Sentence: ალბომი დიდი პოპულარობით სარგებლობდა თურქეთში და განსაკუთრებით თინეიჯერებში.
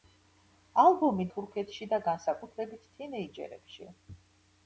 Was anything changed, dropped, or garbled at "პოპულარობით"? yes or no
yes